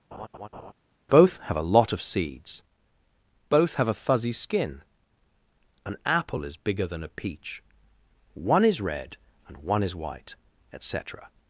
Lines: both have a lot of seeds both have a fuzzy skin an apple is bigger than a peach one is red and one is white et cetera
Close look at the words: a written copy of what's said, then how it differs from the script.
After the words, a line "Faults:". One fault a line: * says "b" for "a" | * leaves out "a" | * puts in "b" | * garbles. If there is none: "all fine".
both have a lot of seeds both have a fuzzy skin an apple is bigger than a peach one is red and one is white et cetera
Faults:
all fine